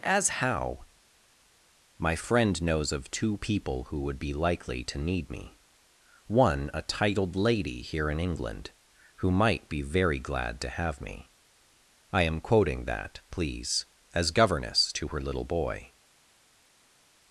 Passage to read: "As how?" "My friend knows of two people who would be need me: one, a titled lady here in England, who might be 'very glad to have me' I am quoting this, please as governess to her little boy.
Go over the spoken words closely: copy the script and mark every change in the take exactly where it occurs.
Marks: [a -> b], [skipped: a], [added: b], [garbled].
"As how?" "My friend knows of two people who would be [added: likely to] need me: one, a titled lady here in England, who might be 'very glad to have me' I am quoting [this, -> that] please as governess to her little boy.